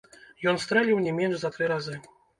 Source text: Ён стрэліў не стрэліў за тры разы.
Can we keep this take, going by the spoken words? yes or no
no